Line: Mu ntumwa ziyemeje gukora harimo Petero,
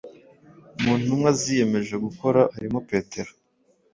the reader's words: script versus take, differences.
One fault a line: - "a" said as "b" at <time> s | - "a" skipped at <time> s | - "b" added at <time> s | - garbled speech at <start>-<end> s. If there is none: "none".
none